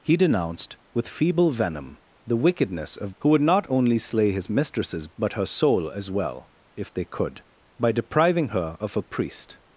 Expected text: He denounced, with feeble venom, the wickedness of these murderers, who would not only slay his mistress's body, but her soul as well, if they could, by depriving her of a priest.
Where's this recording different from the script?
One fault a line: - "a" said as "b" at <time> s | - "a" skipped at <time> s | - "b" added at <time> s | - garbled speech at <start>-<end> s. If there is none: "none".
- "these murderers" skipped at 3.1 s
- "body" skipped at 5.1 s